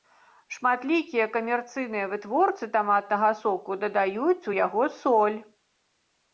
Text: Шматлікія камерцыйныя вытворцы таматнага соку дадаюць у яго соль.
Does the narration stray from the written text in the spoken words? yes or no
no